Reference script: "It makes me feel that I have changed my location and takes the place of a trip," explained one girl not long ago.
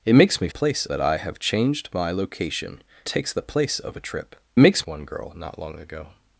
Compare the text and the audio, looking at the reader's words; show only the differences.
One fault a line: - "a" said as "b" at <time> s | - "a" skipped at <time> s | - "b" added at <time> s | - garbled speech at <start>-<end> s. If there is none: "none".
- "feel" said as "place" at 0.5 s
- "and" skipped at 2.8 s
- "explained" said as "makes" at 4.6 s